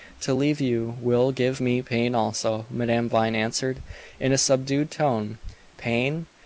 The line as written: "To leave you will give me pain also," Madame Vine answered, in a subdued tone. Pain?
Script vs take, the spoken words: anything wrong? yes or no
no